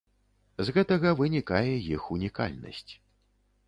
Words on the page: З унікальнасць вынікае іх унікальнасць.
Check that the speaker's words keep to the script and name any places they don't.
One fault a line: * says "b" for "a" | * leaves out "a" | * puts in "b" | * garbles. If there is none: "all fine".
* says "гэтага" for "унікальнасць"